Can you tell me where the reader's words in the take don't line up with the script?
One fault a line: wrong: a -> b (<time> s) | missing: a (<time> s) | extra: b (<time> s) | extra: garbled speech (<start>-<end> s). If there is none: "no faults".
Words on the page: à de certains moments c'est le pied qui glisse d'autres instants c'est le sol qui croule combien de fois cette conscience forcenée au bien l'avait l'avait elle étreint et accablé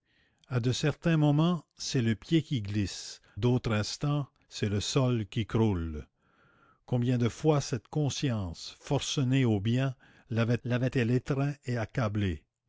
no faults